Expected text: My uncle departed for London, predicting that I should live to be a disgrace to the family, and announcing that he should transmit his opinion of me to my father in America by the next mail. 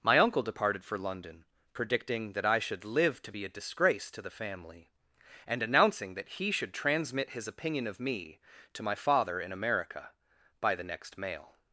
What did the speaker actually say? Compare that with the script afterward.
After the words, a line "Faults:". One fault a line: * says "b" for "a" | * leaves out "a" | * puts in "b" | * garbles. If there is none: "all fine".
My uncle departed for London, predicting that I should live to be a disgrace to the family, and announcing that he should transmit his opinion of me to my father in America by the next mail.
Faults:
all fine